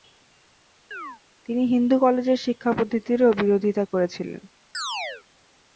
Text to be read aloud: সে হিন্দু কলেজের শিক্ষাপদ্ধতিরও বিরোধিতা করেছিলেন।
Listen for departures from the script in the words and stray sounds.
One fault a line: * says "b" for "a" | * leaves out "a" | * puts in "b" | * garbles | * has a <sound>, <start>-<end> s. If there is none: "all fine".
* has a chirp, 0.9-1.2 s
* says "তিনি" for "সে"
* has a chirp, 4.7-5.2 s